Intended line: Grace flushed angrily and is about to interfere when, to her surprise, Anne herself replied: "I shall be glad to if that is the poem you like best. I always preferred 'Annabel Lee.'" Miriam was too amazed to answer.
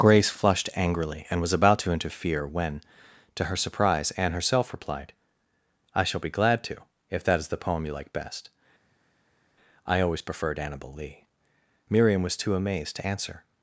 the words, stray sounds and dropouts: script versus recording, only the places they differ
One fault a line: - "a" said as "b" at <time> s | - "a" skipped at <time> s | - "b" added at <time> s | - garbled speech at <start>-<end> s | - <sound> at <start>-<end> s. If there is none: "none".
- "is" said as "was" at 1.4 s